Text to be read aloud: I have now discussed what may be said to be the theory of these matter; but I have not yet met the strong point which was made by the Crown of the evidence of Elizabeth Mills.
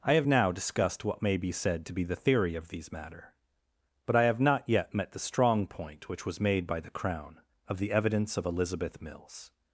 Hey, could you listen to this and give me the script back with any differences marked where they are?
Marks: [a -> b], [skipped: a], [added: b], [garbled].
I have now discussed what may be said to be the theory of these matter; but I have not yet met the strong point which was made by the Crown of the evidence of Elizabeth Mills.